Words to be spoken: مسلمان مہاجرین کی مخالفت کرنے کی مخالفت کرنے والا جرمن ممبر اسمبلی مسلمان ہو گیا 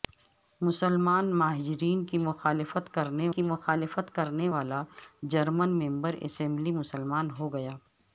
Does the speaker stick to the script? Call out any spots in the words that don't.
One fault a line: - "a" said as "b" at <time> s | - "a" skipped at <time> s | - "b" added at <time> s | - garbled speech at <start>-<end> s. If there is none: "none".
none